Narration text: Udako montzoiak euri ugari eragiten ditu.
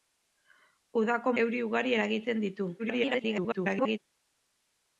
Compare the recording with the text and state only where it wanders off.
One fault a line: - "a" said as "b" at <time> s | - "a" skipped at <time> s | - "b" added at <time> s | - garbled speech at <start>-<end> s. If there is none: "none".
- "montzoiak" skipped at 1.4 s
- garbled speech at 2.8-4.0 s